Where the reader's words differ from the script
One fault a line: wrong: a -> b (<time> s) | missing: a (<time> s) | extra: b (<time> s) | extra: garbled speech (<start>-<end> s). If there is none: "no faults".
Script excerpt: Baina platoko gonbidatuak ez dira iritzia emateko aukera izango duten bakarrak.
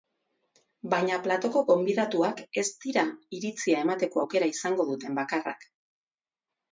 no faults